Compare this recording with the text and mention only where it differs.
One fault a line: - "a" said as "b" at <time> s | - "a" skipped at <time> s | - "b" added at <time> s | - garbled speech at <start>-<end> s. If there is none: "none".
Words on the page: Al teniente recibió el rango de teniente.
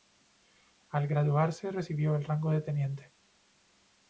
- "teniente" said as "graduarse" at 1.1 s